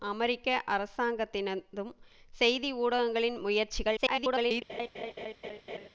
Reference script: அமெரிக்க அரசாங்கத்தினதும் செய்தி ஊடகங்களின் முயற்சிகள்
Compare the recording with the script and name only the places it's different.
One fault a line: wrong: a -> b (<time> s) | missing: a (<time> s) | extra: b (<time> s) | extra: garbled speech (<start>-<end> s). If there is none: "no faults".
extra: garbled speech (4.0-4.6 s)